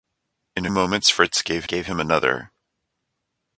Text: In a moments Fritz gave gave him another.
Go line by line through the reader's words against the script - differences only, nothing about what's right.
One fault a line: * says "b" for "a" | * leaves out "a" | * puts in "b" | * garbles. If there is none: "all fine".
all fine